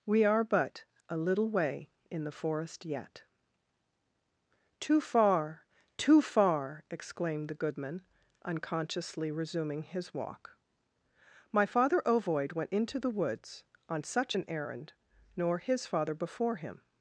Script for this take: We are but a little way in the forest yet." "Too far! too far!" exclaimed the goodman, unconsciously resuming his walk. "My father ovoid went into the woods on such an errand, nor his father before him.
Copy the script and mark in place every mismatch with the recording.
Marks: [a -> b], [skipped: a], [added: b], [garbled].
We are but a little way in the forest yet." "Too far! too far!" exclaimed the goodman, unconsciously resuming his walk. "My father ovoid went into the woods on such an errand, nor his father before him.